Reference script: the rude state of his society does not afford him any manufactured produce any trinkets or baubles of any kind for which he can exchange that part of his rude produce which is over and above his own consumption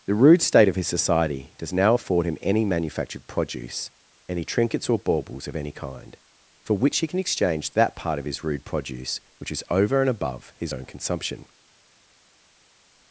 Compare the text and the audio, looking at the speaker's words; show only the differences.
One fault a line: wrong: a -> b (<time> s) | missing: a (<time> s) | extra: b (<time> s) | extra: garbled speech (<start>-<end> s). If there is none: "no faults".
wrong: not -> now (1.7 s)